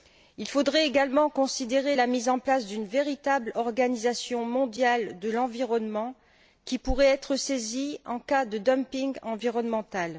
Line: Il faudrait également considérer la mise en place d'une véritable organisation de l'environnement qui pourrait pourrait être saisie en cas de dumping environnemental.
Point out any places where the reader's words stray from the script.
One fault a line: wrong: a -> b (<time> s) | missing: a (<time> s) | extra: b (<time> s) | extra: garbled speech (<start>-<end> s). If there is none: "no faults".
extra: mondiale (4.5 s)
missing: pourrait (7.1 s)